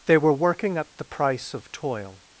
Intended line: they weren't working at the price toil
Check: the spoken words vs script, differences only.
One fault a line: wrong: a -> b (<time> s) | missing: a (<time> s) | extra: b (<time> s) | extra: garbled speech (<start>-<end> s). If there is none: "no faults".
wrong: weren't -> were (0.2 s)
extra: of (1.5 s)